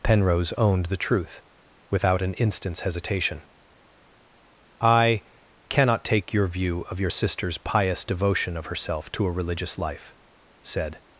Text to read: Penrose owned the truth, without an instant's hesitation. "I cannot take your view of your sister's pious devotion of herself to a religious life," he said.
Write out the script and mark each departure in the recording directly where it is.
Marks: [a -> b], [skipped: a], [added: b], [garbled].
Penrose owned the truth, without an instant's hesitation. "I cannot take your view of your sister's pious devotion of herself to a religious life," [skipped: he] said.